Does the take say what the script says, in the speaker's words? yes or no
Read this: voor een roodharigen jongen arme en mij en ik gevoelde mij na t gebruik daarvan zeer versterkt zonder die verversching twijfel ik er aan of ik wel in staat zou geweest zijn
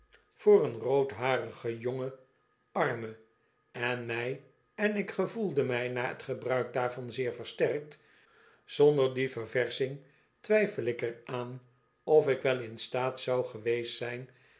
yes